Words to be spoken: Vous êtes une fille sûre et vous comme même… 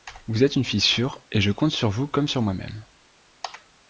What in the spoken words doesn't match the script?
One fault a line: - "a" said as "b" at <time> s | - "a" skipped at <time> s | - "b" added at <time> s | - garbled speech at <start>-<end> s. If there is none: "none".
- "je compte sur" added at 1.4 s
- "sur moi" added at 2.3 s